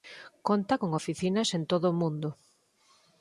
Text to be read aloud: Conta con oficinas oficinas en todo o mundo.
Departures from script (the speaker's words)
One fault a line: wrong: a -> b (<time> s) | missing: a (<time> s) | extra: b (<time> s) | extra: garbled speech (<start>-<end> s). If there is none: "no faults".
missing: oficinas (1.5 s)